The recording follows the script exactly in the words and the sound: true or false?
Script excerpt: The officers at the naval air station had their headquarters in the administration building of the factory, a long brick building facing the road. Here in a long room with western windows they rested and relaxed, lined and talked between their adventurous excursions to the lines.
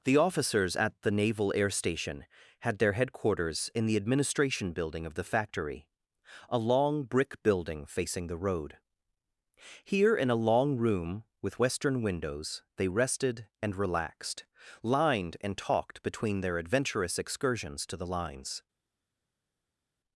true